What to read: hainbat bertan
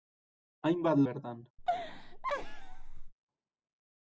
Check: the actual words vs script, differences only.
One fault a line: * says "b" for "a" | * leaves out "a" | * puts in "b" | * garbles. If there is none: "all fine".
all fine